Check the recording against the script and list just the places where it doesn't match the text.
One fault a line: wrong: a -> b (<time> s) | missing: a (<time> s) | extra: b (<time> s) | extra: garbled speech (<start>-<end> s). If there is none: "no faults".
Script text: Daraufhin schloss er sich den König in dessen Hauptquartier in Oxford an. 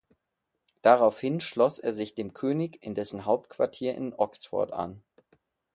wrong: den -> dem (2.1 s)